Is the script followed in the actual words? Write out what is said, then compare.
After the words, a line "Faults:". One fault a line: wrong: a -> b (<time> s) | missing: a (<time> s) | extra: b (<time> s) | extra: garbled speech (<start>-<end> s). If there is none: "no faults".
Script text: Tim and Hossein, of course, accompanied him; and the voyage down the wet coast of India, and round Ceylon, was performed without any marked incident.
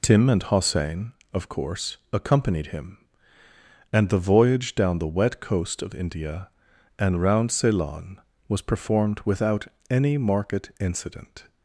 Tim and Hossein, of course, accompanied him; and the voyage down the wet coast of India, and round Ceylon, was performed without any marked incident.
Faults:
no faults